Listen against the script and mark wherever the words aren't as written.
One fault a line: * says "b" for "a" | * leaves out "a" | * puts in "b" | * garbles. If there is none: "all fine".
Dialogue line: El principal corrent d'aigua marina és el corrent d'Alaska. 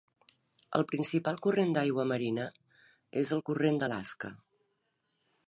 all fine